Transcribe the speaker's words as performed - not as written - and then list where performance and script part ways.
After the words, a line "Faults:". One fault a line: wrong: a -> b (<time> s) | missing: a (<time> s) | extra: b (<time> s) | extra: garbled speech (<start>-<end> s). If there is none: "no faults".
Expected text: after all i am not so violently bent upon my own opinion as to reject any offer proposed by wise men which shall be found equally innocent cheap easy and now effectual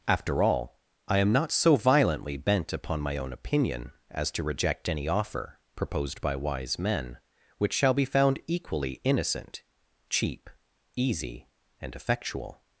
after all i am not so violently bent upon my own opinion as to reject any offer proposed by wise men which shall be found equally innocent cheap easy and effectual
Faults:
missing: now (11.9 s)